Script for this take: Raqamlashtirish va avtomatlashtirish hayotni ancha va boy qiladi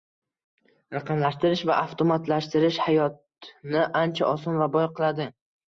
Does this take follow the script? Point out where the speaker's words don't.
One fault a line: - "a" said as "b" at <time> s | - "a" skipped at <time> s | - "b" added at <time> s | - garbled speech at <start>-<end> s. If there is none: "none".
- "oson" added at 4.3 s